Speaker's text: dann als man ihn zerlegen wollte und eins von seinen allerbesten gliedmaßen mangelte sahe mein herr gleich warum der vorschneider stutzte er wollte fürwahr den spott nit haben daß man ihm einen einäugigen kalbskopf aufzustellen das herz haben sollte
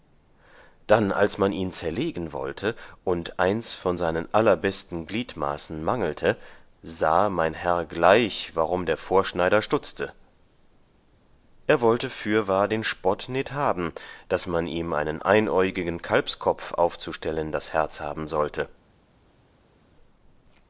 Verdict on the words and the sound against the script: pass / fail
pass